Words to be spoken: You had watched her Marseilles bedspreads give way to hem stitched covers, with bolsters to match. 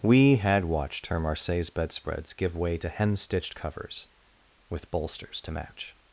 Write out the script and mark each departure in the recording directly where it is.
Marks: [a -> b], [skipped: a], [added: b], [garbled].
[You -> We] had watched her Marseilles bedspreads give way to hem stitched covers, with bolsters to match.